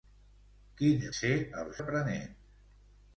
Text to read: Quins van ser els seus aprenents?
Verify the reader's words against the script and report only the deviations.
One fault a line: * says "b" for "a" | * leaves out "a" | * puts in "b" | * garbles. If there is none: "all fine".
* leaves out "van"
* leaves out "seus"